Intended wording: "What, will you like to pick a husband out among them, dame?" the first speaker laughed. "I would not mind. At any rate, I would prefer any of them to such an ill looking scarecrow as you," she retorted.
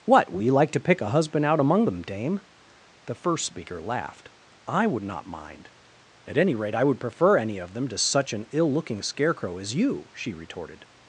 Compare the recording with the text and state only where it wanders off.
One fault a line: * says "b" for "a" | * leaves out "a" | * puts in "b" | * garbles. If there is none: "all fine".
all fine